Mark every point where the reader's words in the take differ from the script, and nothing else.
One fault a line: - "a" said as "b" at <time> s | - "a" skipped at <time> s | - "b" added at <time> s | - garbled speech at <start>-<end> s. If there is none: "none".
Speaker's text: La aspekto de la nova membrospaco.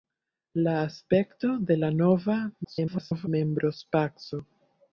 - garbled speech at 2.6-3.3 s